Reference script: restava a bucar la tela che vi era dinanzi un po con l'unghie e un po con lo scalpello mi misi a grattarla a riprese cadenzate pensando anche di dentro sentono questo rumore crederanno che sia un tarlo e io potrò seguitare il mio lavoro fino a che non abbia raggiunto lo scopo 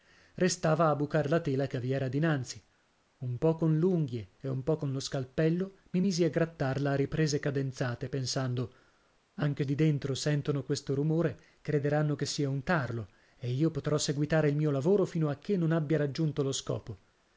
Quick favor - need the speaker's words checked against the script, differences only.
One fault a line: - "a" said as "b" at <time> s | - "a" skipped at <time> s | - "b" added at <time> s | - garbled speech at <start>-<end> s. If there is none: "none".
none